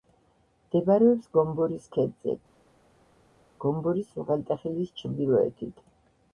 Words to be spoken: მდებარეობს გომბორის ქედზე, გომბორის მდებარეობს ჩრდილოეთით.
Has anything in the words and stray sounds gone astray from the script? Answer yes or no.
yes